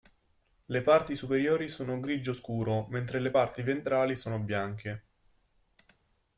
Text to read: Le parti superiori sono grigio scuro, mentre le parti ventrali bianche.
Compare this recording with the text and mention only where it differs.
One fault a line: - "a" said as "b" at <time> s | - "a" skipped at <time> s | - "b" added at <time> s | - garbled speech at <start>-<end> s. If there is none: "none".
- "sono" added at 4.1 s